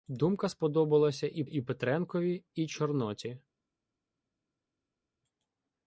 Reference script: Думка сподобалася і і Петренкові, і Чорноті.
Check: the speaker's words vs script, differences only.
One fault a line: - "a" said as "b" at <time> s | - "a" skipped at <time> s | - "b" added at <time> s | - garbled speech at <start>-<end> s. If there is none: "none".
none